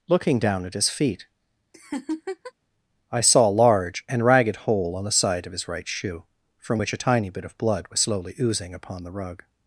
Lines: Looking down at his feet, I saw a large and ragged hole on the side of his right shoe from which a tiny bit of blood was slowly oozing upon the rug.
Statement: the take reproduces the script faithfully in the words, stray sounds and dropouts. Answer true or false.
false